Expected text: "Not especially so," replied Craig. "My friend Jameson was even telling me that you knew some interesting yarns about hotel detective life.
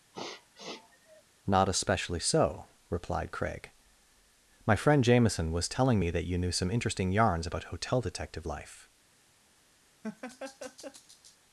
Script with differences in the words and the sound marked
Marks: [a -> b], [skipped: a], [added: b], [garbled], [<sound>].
[sniff] "Not especially so," replied Craig. "My friend Jameson was [skipped: even] telling me that you knew some interesting yarns about hotel detective life. [laugh]